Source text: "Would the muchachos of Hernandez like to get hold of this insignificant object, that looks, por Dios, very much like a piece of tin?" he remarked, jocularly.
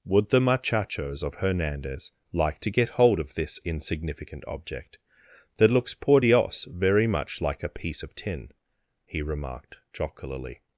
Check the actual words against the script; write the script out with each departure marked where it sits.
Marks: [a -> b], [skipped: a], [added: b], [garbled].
"Would the muchachos of Hernandez like to get hold of this insignificant object, that looks, por Dios, very much like a piece of tin?" he remarked, jocularly.